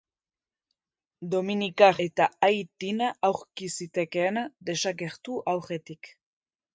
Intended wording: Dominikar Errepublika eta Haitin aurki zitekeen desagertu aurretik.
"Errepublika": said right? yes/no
no